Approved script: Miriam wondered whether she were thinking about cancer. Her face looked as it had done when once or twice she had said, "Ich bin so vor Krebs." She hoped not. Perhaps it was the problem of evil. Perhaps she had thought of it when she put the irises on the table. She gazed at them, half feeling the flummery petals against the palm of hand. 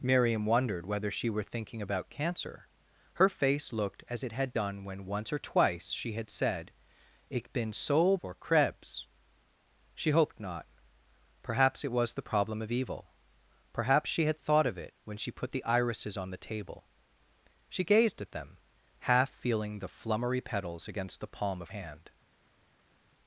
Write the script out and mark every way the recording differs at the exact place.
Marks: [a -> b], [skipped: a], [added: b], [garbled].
Miriam wondered whether she were thinking about cancer. Her face looked as it had done when once or twice she had said, "Ich bin so vor Krebs." She hoped not. Perhaps it was the problem of evil. Perhaps she had thought of it when she put the irises on the table. She gazed at them, half feeling the flummery petals against the palm of hand.